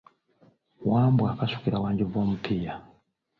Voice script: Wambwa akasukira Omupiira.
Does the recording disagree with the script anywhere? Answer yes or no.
yes